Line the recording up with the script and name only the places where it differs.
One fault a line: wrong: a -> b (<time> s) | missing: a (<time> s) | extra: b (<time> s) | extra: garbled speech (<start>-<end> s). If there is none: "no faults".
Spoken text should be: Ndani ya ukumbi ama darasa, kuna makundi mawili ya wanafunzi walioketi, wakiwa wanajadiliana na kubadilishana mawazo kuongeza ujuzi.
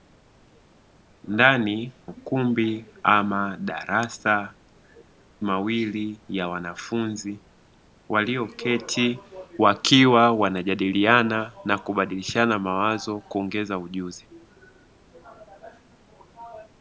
missing: ya (1.9 s)
missing: kuna makundi (4.5 s)